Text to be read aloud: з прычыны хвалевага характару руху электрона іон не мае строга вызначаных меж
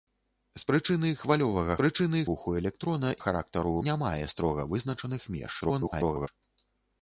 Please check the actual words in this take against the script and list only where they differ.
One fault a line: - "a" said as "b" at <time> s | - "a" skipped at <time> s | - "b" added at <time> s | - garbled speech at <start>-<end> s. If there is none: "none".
- "характару" said as "прычыны" at 1.8 s
- "іон" said as "характару" at 3.2 s
- garbled speech at 5.6-6.3 s